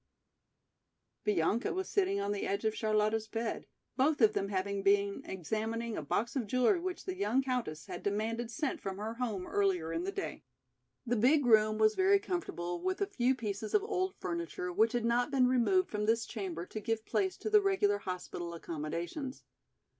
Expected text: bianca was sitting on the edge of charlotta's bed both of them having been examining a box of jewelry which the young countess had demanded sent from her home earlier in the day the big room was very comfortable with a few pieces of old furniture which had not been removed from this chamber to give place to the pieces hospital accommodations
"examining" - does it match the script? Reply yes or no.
yes